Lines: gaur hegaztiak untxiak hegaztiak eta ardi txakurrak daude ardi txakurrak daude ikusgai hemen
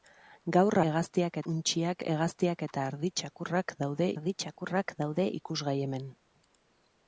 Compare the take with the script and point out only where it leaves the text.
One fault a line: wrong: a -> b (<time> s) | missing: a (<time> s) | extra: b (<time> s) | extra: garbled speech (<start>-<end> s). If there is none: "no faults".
no faults